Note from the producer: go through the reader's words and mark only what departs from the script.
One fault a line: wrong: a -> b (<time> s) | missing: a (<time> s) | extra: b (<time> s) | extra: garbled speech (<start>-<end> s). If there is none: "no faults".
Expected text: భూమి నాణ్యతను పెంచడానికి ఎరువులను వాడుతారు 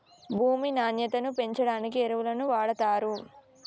no faults